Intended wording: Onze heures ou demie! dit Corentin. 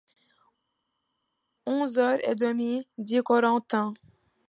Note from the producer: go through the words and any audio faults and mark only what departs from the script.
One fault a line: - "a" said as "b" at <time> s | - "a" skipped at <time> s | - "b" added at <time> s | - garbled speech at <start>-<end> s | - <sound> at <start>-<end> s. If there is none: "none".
- "ou" said as "et" at 2.2 s